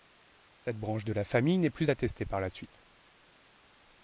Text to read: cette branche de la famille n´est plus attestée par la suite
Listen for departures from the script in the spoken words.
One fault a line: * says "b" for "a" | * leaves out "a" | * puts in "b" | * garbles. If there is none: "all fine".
all fine